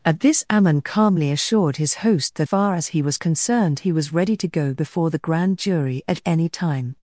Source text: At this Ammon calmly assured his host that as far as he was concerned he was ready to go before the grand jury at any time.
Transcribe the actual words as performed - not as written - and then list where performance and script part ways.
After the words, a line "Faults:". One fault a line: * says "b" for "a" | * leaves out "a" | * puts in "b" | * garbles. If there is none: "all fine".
At this Ammon calmly assured his host that far as he was concerned he was ready to go before the grand jury at any time.
Faults:
* leaves out "as"